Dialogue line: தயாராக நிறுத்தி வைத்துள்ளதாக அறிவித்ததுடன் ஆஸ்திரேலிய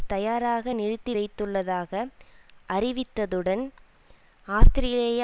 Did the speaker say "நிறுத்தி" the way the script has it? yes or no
yes